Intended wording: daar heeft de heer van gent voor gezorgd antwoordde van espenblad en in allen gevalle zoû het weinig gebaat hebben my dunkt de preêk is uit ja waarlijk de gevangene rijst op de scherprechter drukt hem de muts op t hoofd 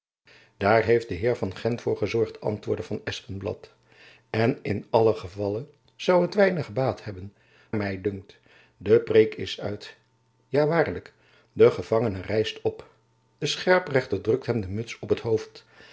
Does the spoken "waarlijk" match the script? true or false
true